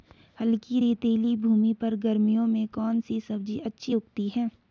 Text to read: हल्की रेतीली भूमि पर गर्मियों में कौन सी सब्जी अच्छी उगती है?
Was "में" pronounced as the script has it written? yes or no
yes